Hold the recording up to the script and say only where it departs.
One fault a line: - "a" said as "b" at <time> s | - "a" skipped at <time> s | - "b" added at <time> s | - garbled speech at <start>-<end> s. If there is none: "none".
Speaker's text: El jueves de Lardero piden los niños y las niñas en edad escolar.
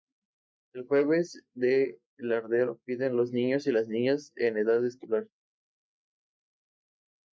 none